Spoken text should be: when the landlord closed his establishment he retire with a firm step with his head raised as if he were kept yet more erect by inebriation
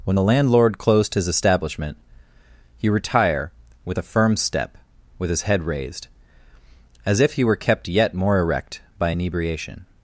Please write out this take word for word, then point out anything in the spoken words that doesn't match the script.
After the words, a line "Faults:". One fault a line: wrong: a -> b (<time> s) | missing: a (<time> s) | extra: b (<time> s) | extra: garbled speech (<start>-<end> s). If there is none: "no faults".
when the landlord closed his establishment he retire with a firm step with his head raised as if he were kept yet more erect by inebriation
Faults:
no faults